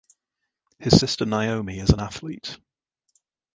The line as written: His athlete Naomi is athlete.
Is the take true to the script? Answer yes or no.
no